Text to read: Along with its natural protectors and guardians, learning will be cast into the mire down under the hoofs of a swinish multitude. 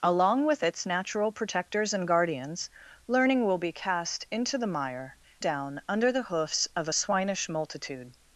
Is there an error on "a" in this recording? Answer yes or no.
no